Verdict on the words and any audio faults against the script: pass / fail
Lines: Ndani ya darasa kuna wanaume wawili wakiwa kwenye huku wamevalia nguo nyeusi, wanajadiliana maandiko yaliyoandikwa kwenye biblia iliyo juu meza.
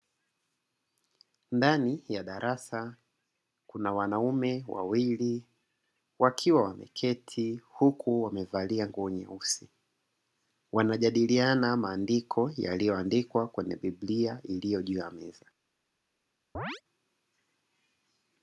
fail